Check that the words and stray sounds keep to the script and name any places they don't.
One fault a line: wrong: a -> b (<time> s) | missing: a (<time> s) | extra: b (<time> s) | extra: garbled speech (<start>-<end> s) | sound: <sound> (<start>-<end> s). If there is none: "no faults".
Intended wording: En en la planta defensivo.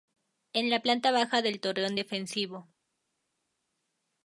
missing: en (0.7 s)
extra: baja del torreón (1.1 s)